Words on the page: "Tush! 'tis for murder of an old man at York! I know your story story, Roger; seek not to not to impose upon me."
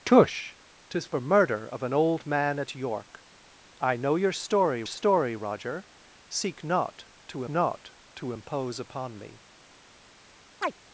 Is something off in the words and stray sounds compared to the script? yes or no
yes